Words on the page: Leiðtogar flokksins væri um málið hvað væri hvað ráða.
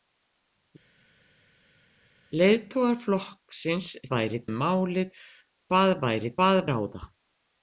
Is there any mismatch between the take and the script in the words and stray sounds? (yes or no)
no